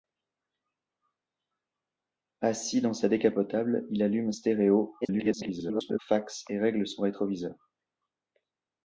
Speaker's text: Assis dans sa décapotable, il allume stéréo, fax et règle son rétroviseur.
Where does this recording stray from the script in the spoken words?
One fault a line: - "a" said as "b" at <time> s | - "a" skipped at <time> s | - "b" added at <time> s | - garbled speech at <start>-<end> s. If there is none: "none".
- garbled speech at 5.0-6.0 s